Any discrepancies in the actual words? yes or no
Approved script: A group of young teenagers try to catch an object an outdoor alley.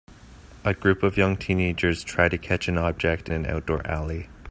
no